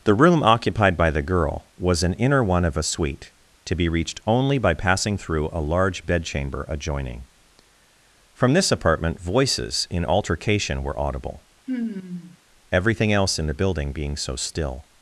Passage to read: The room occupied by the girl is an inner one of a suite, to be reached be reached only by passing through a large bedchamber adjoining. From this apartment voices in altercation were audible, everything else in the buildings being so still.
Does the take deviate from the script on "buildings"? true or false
true